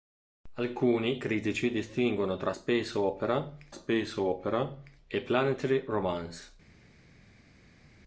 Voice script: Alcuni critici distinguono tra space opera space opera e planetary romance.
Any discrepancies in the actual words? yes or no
no